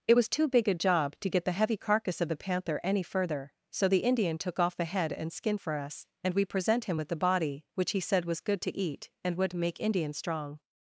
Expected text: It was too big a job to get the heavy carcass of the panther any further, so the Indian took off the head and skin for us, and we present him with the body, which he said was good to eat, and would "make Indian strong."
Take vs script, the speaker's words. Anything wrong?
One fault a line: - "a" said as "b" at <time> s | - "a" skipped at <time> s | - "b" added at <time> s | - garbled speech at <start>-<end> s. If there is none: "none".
none